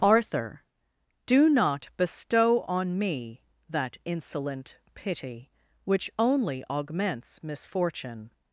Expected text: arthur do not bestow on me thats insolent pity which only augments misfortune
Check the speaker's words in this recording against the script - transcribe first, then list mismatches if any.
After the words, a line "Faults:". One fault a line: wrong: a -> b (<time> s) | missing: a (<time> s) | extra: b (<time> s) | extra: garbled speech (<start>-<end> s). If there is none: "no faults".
arthur do not bestow on me that insolent pity which only augments misfortune
Faults:
wrong: thats -> that (3.7 s)